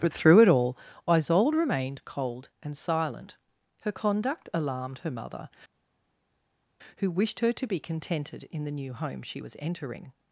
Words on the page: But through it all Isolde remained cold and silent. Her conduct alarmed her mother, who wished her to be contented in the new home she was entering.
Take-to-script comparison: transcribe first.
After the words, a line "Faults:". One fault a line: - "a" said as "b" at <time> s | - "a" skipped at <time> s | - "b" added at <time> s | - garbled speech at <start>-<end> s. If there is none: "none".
But through it all Isolde remained cold and silent. Her conduct alarmed her mother, who wished her to be contented in the new home she was entering.
Faults:
none